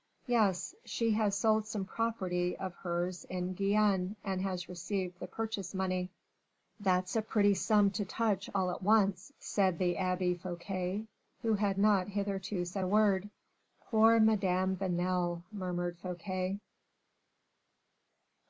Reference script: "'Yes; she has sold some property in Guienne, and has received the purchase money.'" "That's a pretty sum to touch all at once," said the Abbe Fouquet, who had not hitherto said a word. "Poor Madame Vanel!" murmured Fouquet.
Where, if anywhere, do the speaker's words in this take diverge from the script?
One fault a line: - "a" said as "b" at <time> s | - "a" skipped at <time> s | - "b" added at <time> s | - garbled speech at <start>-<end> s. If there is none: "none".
- "of hers" added at 2.6 s